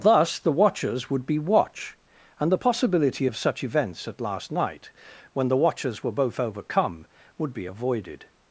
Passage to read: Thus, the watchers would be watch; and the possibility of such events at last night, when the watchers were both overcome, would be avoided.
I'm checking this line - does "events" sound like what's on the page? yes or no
yes